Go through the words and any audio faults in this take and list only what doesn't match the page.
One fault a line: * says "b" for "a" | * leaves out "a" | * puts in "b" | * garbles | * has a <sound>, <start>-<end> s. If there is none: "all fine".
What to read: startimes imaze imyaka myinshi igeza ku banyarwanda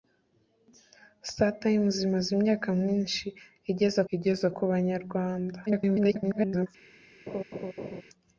* puts in "igeza"
* garbles
* has a laugh, 7.3-8.0 s